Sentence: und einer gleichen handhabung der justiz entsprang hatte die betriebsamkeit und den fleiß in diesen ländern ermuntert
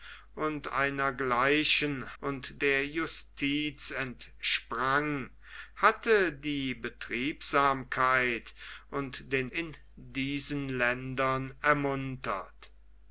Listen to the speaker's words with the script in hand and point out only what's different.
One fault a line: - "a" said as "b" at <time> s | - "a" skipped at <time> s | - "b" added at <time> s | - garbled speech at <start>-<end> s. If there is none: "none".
- "handhabung" said as "und" at 2.2 s
- "fleiß" skipped at 9.5 s